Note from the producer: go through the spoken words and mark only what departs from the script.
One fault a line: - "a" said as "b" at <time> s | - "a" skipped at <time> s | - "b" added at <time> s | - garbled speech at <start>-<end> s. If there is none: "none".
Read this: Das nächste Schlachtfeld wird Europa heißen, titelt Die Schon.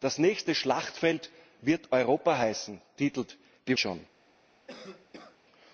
none